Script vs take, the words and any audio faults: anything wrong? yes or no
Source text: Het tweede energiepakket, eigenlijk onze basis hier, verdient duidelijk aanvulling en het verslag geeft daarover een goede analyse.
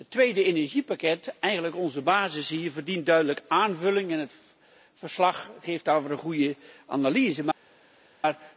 no